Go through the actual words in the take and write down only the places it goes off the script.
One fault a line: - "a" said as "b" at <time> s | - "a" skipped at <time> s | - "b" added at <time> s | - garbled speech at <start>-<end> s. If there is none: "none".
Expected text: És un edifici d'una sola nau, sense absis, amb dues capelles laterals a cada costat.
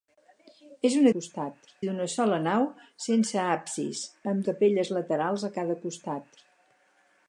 - "edifici" said as "costat" at 1.2 s
- "dues" skipped at 4.5 s